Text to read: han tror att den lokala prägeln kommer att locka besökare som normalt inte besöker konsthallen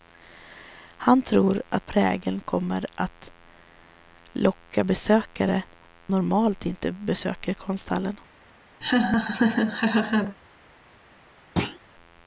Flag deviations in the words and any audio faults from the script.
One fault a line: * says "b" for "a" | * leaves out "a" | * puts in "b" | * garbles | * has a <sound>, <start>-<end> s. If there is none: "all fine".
* leaves out "den lokala"
* leaves out "som"
* has a laugh, 8.8-10.4 s
* has a thud, 11.6-11.8 s